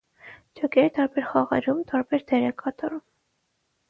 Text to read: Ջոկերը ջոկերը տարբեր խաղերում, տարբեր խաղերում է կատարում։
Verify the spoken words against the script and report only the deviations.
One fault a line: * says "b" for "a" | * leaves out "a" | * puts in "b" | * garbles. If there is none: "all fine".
* leaves out "ջոկերը"
* says "դեր" for "խաղերում"